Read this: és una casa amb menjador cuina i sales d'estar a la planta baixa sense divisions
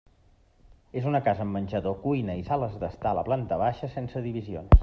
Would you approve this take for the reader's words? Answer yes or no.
yes